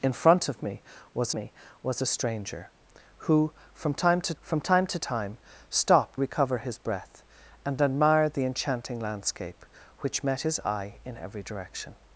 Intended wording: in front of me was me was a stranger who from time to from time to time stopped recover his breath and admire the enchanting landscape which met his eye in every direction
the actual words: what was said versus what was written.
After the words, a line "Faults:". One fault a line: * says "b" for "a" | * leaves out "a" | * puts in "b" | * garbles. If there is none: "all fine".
in front of me was me was a stranger who from time to from time to time stopped recover his breath and admire the enchanting landscape which met his eye in every direction
Faults:
all fine